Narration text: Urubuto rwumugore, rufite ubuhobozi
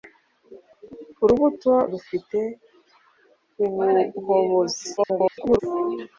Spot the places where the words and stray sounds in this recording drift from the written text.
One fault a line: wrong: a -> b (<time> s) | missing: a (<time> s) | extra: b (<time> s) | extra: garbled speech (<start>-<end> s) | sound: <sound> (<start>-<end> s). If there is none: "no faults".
missing: rwumugore (1.7 s)
extra: garbled speech (5.0-5.6 s)